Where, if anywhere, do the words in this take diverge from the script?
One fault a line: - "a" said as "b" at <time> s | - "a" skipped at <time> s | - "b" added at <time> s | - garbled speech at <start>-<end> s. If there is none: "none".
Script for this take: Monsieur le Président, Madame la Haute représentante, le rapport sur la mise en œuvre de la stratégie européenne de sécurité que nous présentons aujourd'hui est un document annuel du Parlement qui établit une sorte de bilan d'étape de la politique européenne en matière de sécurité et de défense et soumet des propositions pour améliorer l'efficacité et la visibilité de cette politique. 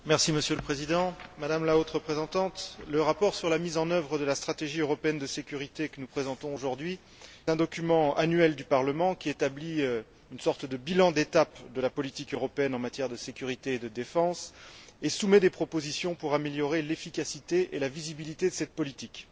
- "est" skipped at 7.0 s